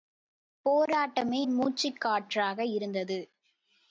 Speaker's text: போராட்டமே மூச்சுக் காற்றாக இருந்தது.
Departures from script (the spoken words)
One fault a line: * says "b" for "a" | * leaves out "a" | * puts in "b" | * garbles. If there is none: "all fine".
all fine